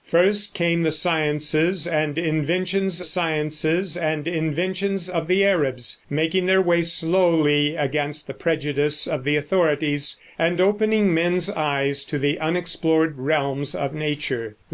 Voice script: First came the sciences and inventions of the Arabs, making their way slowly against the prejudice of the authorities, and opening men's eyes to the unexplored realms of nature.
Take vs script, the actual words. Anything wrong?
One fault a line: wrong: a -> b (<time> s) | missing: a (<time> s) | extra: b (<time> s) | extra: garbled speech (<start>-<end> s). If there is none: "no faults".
extra: sciences and inventions (3.0 s)